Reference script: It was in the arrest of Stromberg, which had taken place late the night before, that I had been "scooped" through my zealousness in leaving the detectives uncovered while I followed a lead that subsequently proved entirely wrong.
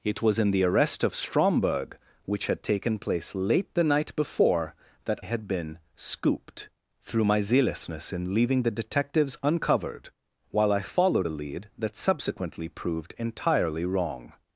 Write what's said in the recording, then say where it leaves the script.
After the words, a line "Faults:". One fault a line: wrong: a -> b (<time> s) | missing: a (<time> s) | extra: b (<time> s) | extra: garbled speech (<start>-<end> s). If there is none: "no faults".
It was in the arrest of Stromberg, which had taken place late the night before, that had been "scooped" through my zealousness in leaving the detectives uncovered while I followed a lead that subsequently proved entirely wrong.
Faults:
missing: I (5.2 s)